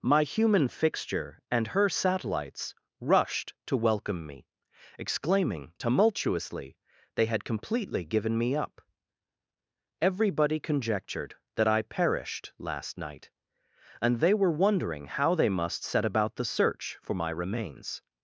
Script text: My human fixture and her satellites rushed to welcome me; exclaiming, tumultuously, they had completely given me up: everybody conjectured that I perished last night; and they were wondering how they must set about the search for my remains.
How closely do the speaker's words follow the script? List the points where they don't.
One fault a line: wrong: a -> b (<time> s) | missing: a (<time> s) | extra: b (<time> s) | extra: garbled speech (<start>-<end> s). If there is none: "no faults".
no faults